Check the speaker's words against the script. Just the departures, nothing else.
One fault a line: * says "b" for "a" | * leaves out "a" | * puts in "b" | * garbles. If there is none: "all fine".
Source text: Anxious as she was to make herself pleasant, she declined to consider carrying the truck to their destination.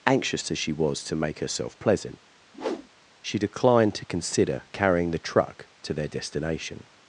all fine